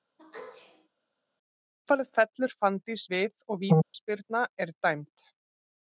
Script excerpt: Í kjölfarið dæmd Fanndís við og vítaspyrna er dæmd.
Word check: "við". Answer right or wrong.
right